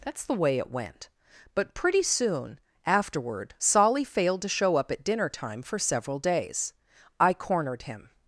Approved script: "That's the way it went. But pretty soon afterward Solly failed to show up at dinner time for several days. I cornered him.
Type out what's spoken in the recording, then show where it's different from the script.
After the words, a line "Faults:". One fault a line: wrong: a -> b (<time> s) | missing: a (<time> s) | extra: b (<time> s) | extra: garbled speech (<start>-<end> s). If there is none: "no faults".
"That's the way it went. But pretty soon afterward Solly failed to show up at dinner time for several days. I cornered him.
Faults:
no faults